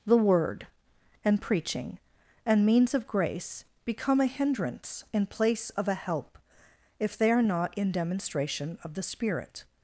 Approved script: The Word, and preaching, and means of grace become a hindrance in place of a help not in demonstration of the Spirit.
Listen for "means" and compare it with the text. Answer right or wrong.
right